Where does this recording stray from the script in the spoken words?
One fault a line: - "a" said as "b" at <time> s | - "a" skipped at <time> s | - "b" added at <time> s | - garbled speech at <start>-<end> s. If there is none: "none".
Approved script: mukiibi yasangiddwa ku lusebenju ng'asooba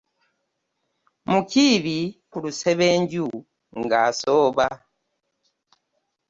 - "yasangiddwa" skipped at 2.0 s